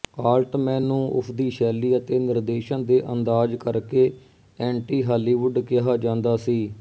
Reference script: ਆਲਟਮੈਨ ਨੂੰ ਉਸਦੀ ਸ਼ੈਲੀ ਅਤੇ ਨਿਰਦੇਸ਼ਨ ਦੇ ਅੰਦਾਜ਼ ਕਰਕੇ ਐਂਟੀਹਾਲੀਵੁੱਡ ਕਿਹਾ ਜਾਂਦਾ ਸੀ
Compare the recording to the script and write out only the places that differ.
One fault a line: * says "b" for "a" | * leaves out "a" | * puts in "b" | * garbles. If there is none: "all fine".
all fine